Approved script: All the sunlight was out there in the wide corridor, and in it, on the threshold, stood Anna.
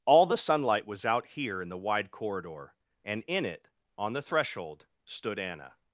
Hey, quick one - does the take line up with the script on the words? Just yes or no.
no